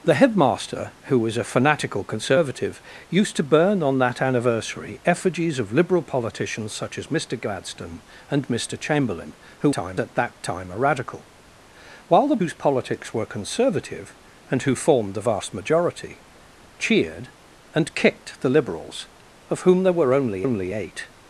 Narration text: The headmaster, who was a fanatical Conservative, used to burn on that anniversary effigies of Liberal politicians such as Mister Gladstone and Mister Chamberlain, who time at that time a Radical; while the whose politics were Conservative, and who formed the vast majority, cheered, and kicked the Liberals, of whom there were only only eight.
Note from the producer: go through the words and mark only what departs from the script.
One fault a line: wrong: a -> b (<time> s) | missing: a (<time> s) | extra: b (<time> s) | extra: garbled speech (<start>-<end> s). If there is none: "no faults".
no faults